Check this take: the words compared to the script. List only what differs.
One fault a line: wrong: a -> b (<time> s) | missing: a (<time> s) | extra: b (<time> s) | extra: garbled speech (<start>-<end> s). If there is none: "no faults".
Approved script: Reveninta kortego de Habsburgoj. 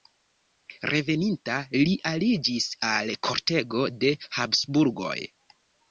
extra: li aliĝis al (1.8 s)